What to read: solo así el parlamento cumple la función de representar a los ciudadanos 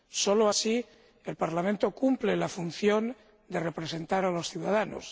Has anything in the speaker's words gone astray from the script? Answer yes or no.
no